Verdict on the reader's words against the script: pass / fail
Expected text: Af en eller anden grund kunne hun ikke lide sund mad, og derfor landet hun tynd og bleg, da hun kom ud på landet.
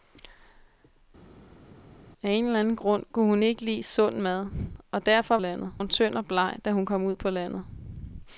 pass